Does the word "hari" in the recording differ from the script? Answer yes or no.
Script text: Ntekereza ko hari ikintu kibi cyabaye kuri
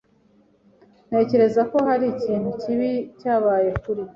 no